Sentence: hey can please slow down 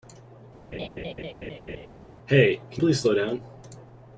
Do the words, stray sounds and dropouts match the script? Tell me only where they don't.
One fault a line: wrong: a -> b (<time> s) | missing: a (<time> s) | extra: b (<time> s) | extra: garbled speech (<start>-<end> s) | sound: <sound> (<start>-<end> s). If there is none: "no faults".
sound: laugh (0.7-1.9 s)